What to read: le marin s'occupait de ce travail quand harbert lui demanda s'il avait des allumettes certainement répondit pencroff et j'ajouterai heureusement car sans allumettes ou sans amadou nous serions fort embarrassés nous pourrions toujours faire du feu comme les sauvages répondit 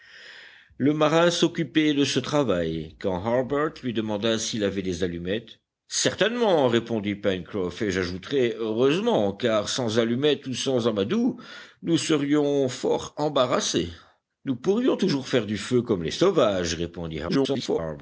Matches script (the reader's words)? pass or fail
fail